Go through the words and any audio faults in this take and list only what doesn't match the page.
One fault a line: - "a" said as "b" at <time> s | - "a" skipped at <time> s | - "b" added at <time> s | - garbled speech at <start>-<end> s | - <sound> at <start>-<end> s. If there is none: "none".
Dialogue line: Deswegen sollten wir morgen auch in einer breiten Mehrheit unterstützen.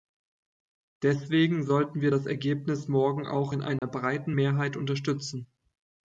- "das Ergebnis" added at 2.1 s
- dropout at 3.8-3.8 s